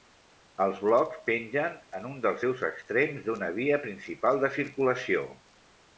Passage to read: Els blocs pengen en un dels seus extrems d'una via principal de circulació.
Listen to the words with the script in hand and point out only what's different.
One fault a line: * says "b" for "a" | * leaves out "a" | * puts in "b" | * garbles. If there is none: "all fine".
all fine